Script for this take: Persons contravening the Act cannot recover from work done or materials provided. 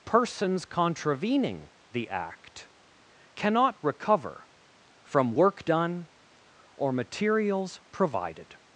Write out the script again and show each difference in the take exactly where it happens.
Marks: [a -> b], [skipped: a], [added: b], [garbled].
Persons contravening the Act cannot recover from work done or materials provided.